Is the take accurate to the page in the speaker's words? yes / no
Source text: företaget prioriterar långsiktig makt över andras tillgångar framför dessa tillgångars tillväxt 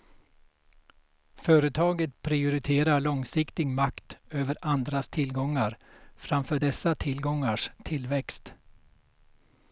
yes